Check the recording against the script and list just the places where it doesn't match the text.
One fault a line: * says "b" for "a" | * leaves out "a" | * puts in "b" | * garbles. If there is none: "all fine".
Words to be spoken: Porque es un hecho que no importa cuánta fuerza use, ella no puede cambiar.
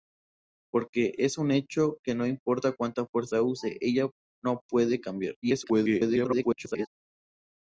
* garbles